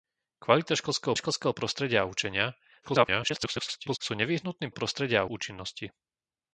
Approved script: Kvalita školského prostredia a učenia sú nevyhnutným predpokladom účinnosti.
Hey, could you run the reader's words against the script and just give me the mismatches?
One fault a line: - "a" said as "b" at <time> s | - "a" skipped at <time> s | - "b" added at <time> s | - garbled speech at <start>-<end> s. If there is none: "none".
- "školského" added at 1.1 s
- garbled speech at 2.8-4.0 s
- "predpokladom" said as "prostredia" at 4.7 s